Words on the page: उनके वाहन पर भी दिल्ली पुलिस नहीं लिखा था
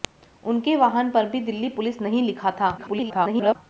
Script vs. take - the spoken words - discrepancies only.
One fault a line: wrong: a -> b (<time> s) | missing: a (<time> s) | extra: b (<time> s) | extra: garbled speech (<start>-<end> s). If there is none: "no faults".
extra: garbled speech (2.8-3.6 s)